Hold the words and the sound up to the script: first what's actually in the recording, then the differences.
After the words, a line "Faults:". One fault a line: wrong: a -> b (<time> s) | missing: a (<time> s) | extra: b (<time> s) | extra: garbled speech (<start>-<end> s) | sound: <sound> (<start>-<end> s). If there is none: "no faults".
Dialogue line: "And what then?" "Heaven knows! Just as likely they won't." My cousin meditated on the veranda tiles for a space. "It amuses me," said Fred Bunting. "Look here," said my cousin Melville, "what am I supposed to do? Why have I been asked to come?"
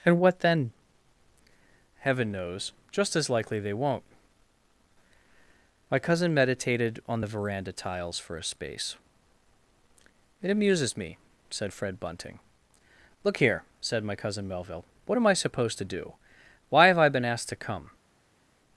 "And what then?" "Heaven knows! Just as likely they won't." My cousin meditated on the veranda tiles for a space. "It amuses me," said Fred Bunting. "Look here," said my cousin Melville, "what am I supposed to do? Why have I been asked to come?"
Faults:
no faults